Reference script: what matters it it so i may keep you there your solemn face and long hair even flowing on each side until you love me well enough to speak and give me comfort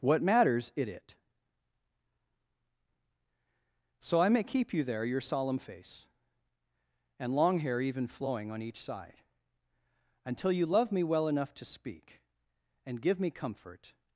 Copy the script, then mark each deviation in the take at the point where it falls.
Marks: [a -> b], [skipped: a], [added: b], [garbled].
what matters it it so i may keep you there your solemn face and long hair even flowing on each side until you love me well enough to speak and give me comfort